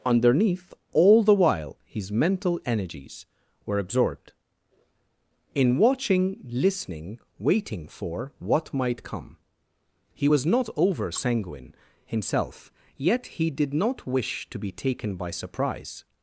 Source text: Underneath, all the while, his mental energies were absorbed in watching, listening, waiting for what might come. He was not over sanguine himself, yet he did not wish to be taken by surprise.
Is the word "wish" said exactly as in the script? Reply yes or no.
yes